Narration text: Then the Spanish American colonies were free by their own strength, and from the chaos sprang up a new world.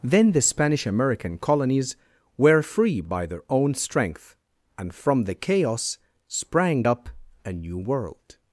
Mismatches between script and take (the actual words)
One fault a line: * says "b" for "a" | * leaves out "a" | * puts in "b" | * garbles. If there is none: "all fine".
all fine